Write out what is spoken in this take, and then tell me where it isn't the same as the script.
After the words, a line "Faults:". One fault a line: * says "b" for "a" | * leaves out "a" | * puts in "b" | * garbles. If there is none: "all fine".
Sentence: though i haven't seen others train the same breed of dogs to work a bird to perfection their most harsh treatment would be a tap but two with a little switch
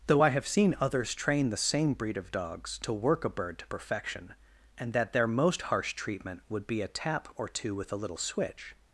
though i have seen others train the same breed of dogs to work a bird to perfection and that their most harsh treatment would be a tap or two with a little switch
Faults:
* says "have" for "haven't"
* puts in "and that"
* says "or" for "but"